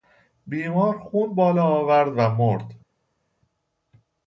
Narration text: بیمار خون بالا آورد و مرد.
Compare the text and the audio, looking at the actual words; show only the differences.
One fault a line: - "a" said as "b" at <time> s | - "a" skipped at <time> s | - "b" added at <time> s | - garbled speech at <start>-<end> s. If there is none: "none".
none